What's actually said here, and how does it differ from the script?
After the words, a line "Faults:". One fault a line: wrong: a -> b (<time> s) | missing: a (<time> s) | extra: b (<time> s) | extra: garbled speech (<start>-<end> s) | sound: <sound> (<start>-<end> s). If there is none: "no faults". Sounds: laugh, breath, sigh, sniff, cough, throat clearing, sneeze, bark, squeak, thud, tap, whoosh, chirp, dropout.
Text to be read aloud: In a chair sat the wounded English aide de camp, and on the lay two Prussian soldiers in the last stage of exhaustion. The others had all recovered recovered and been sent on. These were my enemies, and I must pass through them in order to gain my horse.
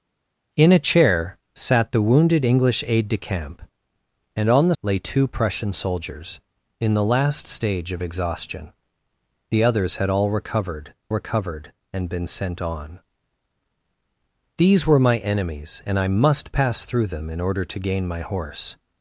In a chair sat the wounded English aide de camp, and on the lay two Prussian soldiers in the last stage of exhaustion. The others had all recovered recovered and been sent on. These were my enemies, and I must pass through them in order to gain my horse.
Faults:
no faults